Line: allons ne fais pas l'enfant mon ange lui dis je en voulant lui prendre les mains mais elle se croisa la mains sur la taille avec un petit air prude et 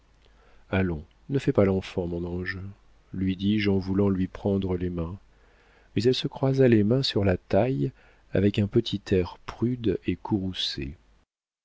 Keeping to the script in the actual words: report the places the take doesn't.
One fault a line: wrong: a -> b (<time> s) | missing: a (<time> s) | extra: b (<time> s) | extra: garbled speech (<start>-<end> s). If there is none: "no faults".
wrong: la -> les (6.7 s)